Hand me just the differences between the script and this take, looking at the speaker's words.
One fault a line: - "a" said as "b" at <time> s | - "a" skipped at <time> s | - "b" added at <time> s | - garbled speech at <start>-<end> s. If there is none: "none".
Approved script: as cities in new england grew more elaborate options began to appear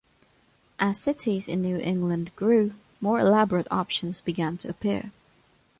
none